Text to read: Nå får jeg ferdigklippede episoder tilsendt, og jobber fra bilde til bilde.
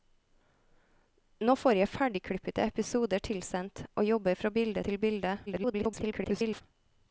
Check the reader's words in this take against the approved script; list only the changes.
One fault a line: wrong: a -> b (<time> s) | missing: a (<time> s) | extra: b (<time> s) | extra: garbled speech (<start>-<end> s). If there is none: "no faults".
extra: garbled speech (5.5-6.6 s)